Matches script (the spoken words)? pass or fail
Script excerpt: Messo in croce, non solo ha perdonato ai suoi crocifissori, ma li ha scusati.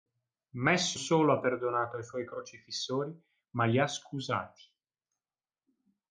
fail